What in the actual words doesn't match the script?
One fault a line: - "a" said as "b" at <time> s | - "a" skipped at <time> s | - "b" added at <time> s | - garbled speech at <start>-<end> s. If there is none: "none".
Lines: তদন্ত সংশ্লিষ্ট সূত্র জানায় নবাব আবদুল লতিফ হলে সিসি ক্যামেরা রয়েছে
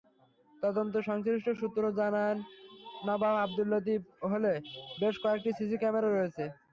- "বেশ কয়েকটি" added at 5.0 s